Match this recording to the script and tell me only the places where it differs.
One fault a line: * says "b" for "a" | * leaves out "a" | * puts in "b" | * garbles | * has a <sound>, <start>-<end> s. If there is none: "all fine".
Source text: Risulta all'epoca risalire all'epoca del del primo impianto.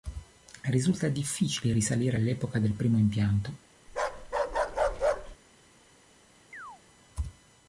* says "difficile" for "all'epoca"
* leaves out "del"
* has a bark, 3.9-5.4 s
* has a chirp, 6.5-6.8 s